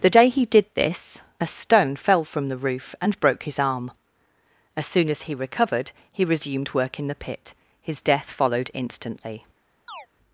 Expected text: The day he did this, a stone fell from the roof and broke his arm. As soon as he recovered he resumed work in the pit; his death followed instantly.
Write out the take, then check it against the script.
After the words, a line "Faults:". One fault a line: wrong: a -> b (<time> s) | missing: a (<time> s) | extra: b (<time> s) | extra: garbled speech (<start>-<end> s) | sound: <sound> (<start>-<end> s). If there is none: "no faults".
The day he did this, a stone fell from the roof and broke his arm. As soon as he recovered he resumed work in the pit; his death followed instantly.
Faults:
sound: chirp (9.9-10.1 s)